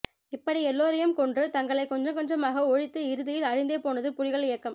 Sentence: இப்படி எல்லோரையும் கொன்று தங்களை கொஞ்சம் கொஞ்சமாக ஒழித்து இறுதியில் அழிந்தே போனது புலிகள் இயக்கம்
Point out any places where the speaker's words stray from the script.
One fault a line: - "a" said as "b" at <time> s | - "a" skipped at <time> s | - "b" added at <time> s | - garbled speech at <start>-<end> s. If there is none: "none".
none